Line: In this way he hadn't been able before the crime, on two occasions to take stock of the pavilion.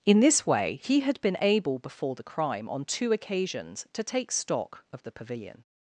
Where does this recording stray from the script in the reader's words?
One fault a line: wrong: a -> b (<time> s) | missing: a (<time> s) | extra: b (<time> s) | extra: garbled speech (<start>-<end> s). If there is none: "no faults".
wrong: hadn't -> had (1.0 s)